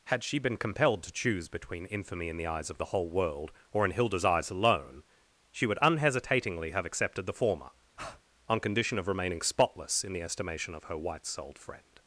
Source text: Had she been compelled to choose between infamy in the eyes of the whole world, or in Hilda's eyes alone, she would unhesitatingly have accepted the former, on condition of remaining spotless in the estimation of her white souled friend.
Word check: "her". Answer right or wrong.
right